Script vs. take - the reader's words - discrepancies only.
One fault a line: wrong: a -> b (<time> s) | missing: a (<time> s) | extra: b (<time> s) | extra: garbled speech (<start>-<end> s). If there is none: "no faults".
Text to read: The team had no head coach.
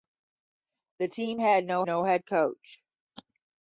extra: no (1.8 s)